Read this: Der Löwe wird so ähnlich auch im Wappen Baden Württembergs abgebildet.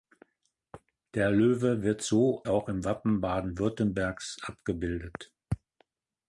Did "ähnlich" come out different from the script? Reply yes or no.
yes